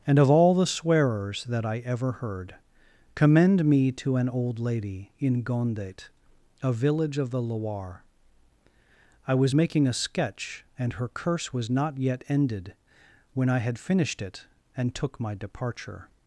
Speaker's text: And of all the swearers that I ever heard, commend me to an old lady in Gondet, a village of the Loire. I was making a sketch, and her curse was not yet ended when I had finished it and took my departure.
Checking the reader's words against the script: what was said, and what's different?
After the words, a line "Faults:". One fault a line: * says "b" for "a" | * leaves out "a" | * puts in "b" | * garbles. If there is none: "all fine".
And of all the swearers that I ever heard, commend me to an old lady in Gondet, a village of the Loire. I was making a sketch, and her curse was not yet ended when I had finished it and took my departure.
Faults:
all fine